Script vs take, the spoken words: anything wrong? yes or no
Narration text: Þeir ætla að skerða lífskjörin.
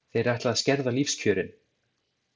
no